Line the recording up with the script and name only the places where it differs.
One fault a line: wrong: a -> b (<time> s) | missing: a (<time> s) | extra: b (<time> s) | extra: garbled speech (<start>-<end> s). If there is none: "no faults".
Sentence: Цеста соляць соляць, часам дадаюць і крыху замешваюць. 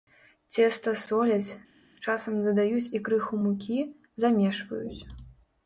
missing: соляць (1.6 s)
extra: мукі (3.4 s)